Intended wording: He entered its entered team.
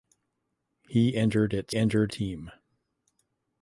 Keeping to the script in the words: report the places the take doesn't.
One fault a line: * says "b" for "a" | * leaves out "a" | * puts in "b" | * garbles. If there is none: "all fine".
all fine